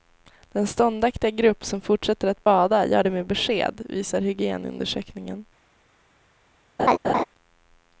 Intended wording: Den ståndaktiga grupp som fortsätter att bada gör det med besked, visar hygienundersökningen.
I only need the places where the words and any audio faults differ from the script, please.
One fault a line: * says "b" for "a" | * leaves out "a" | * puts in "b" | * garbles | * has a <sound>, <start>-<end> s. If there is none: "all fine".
* has a laugh, 6.8-7.2 s